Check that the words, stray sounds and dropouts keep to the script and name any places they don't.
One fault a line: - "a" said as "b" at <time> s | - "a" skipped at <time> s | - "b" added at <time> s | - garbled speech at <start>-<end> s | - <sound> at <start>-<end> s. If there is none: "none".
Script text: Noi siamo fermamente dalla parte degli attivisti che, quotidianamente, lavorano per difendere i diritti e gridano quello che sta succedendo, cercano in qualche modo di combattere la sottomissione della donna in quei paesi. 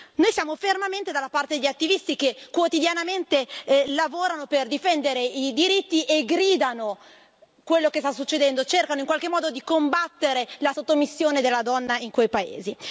none